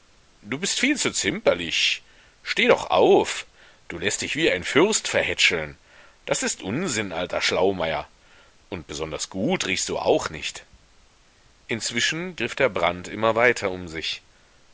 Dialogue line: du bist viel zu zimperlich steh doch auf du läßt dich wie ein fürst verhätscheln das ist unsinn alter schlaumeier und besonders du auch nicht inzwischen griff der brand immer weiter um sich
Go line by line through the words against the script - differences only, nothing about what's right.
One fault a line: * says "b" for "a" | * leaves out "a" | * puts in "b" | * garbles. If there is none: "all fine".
* puts in "gut riechst"